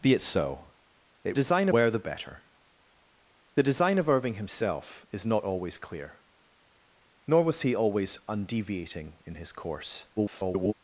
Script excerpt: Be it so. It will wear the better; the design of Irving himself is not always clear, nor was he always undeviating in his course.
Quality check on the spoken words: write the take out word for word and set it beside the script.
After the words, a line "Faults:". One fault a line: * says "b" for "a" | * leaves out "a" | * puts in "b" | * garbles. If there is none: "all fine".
Be it so. It design wear the better; the design of Irving himself is not always clear, nor was he always undeviating in his course. [garbled]
Faults:
* says "design" for "will"
* garbles